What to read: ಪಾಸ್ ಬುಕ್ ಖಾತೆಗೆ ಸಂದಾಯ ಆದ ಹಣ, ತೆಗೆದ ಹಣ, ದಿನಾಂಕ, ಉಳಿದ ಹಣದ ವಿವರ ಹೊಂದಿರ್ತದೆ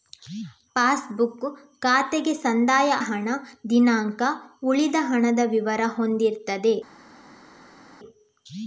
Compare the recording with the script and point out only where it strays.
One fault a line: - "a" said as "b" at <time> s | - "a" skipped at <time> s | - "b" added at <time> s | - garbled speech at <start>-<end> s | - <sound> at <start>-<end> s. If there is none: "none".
- "ಆದ ಹಣ ತೆಗೆದ" skipped at 2.9 s